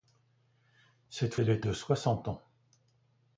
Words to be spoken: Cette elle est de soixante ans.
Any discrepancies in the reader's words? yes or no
no